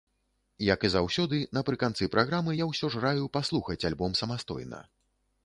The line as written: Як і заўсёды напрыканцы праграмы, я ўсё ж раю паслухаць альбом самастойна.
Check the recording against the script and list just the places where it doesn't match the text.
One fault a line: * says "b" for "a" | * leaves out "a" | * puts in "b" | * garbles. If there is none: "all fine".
all fine